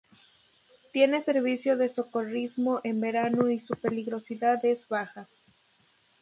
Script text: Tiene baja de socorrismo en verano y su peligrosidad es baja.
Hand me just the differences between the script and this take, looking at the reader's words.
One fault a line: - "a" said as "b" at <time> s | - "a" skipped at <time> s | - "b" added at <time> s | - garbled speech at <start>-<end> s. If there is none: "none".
- "baja" said as "servicio" at 1.2 s